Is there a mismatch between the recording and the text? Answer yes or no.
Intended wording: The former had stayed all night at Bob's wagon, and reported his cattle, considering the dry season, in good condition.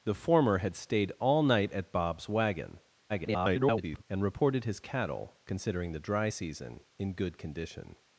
yes